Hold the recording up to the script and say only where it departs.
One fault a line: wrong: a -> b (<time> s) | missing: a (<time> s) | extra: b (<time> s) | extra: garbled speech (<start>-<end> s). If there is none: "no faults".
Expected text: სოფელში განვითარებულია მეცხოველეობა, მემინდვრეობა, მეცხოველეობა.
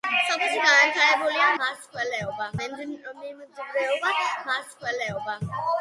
no faults